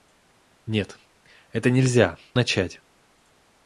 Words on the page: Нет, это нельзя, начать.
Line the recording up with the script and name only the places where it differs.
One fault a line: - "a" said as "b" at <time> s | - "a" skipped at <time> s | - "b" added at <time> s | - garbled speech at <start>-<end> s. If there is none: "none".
none